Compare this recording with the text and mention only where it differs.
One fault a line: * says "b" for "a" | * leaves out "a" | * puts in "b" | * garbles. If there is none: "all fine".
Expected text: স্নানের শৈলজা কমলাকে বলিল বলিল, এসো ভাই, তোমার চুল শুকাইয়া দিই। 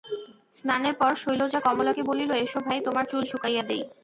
* puts in "পর"
* leaves out "বলিল"